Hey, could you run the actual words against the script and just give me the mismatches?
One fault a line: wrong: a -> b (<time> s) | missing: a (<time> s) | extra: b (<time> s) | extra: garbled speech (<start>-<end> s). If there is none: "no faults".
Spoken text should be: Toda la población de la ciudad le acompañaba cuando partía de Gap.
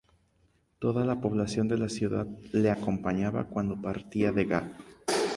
no faults